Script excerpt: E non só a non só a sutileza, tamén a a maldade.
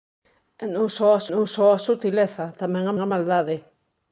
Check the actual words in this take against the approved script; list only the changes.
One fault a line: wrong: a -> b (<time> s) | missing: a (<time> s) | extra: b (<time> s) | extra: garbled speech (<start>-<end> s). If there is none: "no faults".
no faults